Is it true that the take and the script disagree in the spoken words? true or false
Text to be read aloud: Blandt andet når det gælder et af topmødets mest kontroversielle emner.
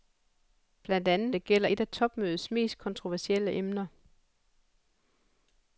true